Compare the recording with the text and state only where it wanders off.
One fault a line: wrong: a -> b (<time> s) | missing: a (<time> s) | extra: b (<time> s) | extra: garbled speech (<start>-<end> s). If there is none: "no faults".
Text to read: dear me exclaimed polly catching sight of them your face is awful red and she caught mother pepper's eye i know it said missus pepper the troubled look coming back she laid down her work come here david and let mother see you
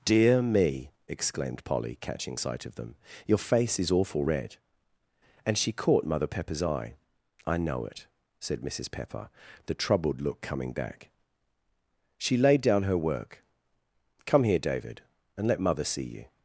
no faults